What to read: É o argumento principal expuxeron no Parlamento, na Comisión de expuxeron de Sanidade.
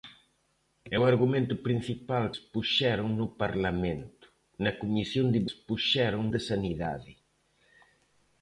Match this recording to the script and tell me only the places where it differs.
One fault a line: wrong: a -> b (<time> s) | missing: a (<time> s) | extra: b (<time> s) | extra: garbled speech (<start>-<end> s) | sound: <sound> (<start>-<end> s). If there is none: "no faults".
no faults